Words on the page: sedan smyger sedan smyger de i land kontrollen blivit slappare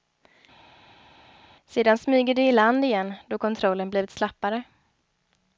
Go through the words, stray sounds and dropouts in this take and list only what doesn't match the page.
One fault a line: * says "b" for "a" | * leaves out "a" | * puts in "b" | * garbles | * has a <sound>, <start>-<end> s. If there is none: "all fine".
* leaves out "sedan smyger"
* puts in "igen då"